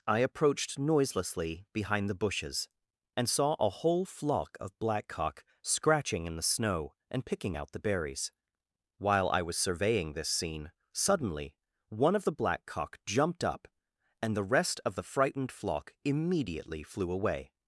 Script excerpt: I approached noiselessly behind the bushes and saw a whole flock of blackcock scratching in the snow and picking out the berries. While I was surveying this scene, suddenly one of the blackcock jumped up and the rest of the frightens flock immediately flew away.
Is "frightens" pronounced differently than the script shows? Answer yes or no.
yes